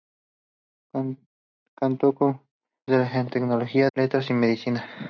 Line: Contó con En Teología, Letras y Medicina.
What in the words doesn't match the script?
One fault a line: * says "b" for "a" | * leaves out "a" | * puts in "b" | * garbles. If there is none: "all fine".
all fine